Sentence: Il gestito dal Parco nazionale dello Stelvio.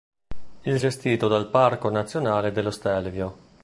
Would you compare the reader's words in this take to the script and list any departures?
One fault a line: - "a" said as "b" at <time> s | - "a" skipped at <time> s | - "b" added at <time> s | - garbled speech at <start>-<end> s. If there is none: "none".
none